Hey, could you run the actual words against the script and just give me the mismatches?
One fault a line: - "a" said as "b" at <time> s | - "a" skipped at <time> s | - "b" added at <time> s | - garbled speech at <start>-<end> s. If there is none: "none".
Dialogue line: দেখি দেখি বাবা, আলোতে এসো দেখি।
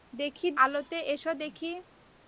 - "দেখি বাবা" skipped at 0.5 s